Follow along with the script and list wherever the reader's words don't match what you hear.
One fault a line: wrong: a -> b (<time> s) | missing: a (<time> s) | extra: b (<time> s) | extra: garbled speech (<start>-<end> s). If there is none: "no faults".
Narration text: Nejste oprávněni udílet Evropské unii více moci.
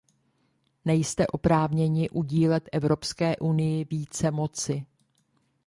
no faults